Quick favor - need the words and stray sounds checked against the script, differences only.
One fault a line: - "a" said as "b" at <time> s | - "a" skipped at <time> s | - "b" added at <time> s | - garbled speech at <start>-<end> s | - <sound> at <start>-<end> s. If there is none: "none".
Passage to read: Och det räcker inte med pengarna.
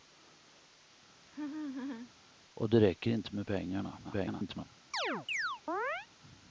- laugh at 1.2-2.1 s
- garbled speech at 4.0-4.7 s
- chirp at 4.9-6.1 s